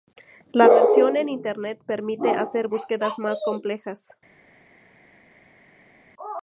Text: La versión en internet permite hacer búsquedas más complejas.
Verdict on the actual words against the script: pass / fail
pass